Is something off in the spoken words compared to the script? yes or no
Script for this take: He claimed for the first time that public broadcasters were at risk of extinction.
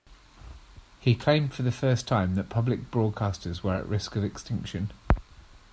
no